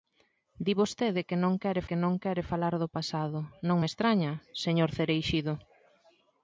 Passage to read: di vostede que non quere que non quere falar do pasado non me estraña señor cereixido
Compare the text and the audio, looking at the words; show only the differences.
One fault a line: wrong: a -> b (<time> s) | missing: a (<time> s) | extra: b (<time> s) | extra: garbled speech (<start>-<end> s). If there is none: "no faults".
no faults